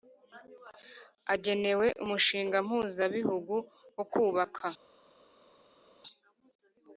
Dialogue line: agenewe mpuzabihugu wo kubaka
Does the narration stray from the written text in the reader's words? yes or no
yes